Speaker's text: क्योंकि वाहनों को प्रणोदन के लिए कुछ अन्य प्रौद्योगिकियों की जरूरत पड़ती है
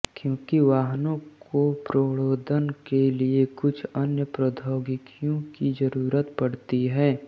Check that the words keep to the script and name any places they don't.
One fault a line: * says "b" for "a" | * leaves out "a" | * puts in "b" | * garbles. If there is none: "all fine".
all fine